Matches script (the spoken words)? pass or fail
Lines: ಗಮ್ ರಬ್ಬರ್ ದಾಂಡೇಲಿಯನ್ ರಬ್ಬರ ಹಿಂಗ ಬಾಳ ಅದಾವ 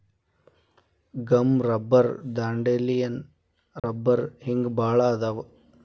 pass